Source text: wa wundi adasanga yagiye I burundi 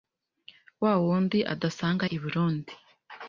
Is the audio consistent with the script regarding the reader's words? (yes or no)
no